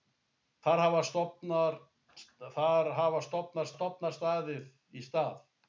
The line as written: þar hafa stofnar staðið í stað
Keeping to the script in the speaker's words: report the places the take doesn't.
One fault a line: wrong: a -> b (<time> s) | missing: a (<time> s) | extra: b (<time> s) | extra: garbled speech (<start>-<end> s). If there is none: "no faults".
extra: stofnar (3.7 s)